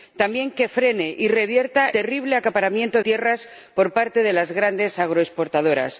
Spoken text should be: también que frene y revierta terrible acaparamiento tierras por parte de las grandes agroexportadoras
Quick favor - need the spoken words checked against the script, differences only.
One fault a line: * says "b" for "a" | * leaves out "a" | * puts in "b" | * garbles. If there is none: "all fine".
all fine